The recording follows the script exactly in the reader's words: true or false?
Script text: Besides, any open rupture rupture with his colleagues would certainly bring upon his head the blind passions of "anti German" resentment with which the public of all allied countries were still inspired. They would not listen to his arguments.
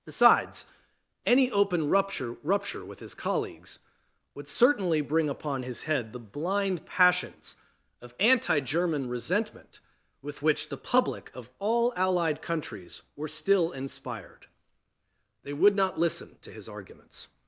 true